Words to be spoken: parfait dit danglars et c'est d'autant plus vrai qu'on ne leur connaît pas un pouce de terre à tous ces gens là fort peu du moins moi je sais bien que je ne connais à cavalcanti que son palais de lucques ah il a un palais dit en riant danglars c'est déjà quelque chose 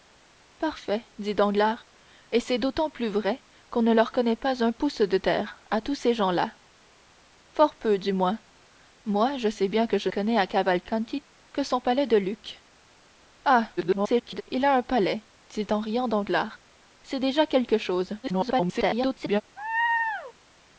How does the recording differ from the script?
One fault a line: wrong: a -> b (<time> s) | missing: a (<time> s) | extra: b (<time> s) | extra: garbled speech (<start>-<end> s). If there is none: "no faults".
missing: ne (10.1 s)
extra: garbled speech (13.8-14.4 s)
extra: garbled speech (18.2-19.4 s)